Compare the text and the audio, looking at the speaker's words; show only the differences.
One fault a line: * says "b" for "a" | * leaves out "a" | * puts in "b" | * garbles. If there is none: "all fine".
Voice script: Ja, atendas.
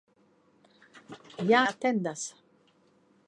all fine